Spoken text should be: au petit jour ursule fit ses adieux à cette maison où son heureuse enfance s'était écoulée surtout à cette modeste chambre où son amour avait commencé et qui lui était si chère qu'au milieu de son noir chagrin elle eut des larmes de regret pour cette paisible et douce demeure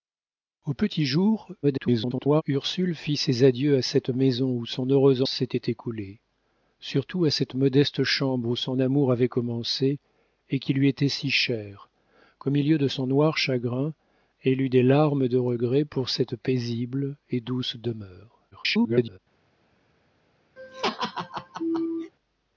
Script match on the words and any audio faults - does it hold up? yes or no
no